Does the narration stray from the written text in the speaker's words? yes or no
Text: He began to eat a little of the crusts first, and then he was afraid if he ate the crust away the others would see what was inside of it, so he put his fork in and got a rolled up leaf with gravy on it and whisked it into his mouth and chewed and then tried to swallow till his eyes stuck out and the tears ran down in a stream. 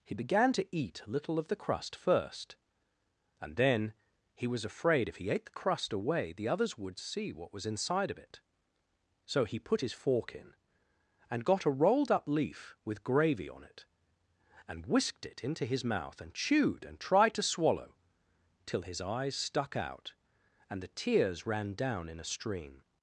yes